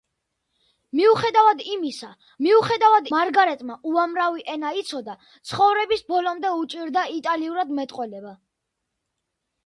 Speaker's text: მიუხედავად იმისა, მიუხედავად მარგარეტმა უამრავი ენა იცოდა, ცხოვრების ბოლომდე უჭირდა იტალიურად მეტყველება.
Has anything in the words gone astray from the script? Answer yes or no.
no